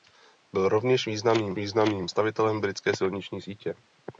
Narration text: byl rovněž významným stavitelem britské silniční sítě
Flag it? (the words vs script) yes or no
yes